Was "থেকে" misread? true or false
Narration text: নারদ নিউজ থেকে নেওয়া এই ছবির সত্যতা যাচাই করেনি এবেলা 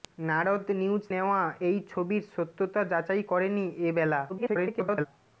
true